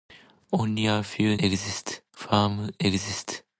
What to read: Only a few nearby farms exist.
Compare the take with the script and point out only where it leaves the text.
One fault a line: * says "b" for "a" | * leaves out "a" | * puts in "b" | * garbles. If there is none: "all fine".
* says "exist" for "nearby"